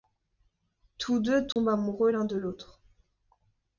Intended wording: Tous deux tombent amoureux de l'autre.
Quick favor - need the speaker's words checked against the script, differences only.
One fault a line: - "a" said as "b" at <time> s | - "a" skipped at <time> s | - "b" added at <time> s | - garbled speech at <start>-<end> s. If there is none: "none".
- "l'un" added at 2.1 s